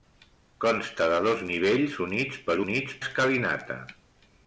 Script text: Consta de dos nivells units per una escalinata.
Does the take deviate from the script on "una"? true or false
true